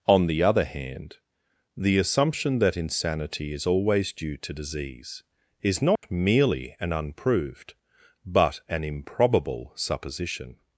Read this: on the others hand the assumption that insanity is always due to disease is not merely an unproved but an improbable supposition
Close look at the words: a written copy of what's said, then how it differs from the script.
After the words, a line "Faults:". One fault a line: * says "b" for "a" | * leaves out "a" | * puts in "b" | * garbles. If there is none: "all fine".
on the other hand the assumption that insanity is always due to disease is not merely an unproved but an improbable supposition
Faults:
* says "other" for "others"